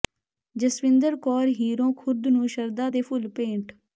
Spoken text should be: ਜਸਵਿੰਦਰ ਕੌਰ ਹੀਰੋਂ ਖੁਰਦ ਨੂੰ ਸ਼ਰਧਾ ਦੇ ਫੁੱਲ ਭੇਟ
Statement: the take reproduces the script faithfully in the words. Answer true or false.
true